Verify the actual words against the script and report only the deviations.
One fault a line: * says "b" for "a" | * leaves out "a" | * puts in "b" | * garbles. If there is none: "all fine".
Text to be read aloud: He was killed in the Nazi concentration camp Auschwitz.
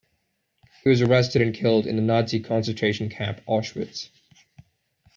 * puts in "arrested and"